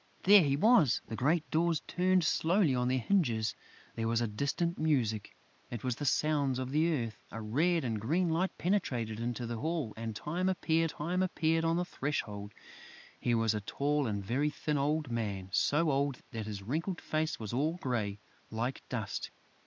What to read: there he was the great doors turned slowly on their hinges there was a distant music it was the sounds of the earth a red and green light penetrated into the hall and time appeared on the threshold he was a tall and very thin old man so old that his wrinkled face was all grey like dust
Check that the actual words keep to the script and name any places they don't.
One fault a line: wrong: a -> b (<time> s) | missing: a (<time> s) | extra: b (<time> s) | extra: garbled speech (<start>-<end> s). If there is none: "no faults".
extra: time appeared (10.9 s)